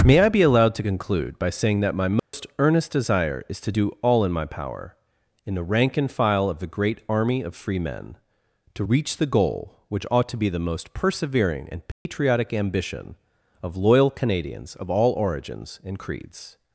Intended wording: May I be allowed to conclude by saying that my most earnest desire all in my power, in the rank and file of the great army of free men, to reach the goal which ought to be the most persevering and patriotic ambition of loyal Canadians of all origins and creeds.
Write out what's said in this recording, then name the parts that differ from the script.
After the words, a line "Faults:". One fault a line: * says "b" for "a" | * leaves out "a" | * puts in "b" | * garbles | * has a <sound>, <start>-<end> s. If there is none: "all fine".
May I be allowed to conclude by saying that my most earnest desire is to do all in my power, in the rank and file of the great army of free men, to reach the goal which ought to be the most persevering and patriotic ambition of loyal Canadians of all origins and creeds.
Faults:
* has a dropout, 2.2-2.3 s
* puts in "is to do"
* has a dropout, 11.9-12.1 s